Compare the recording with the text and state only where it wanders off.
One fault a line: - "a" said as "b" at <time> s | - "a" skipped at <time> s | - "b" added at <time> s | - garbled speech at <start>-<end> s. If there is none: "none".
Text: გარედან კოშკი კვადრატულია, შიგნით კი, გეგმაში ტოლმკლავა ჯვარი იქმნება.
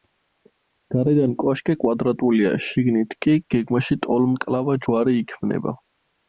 none